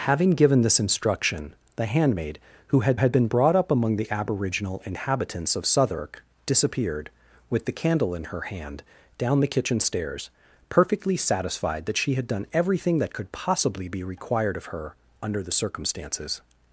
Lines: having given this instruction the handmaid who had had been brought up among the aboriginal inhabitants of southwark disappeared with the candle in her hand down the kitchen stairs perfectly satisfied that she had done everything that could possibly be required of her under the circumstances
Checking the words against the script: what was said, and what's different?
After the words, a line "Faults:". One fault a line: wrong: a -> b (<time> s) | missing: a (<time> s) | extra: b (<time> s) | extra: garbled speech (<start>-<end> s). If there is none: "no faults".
having given this instruction the handmaid who had had been brought up among the aboriginal inhabitants of southwark disappeared with the candle in her hand down the kitchen stairs perfectly satisfied that she had done everything that could possibly be required of her under the circumstances
Faults:
no faults